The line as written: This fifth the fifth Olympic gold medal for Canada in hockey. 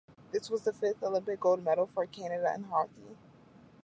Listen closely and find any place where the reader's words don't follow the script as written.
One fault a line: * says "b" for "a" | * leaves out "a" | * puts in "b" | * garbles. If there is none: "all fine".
* says "was" for "fifth"